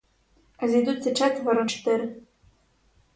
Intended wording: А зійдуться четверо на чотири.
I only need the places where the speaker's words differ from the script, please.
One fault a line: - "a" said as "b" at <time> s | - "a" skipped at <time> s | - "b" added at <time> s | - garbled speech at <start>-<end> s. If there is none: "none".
- "на" skipped at 1.7 s